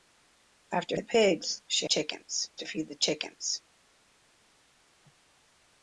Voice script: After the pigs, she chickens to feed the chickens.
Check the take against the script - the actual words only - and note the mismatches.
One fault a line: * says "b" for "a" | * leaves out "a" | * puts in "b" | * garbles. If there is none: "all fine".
all fine